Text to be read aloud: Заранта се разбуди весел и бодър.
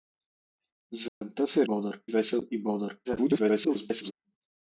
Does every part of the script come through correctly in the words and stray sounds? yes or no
no